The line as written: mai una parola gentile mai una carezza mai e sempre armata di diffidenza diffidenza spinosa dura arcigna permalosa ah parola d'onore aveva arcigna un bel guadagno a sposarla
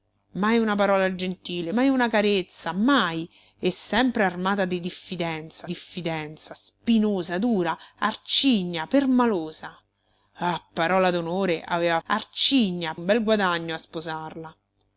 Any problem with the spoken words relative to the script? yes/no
no